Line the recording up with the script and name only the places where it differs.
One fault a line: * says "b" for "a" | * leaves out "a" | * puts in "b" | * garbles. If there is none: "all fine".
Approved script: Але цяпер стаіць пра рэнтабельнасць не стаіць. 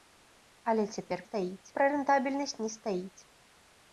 all fine